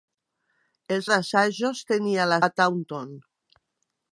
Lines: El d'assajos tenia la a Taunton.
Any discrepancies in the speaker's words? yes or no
no